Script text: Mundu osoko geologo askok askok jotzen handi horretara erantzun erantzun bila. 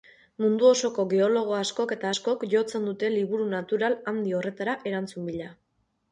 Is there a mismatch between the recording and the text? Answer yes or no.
yes